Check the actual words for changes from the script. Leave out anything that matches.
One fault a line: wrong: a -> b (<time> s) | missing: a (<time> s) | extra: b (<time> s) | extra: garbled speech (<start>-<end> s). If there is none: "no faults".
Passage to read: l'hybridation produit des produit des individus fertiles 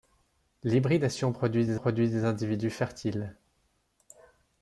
no faults